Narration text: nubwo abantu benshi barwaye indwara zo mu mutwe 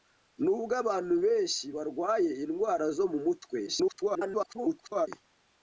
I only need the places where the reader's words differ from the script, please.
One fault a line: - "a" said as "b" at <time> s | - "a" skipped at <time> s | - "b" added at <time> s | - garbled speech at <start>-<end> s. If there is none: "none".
- garbled speech at 3.7-5.1 s